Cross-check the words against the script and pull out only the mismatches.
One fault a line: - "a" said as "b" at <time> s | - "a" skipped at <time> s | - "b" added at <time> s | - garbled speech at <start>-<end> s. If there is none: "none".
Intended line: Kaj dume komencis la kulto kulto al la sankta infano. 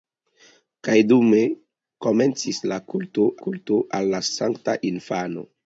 none